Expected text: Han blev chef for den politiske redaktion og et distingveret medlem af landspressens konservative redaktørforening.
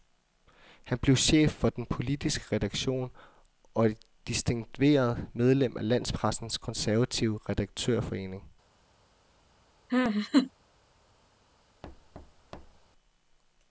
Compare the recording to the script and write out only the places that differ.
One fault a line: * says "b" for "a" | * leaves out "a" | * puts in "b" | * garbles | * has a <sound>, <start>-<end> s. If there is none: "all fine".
* has a laugh, 9.9-10.5 s
* has a thud, 11.8-12.9 s